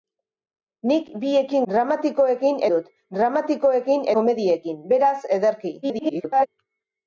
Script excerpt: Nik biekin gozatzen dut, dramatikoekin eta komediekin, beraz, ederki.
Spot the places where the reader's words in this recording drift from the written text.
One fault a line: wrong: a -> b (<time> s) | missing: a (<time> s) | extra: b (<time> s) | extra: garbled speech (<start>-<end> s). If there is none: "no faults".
wrong: gozatzen -> dramatikoekin (1.7 s)
missing: eta (4.1 s)
extra: garbled speech (5.8-6.5 s)